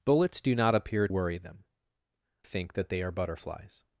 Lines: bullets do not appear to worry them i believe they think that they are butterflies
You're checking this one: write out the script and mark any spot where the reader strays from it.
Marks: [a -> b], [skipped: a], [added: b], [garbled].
bullets do not appear [skipped: to] worry them [skipped: i believe they] think that they are butterflies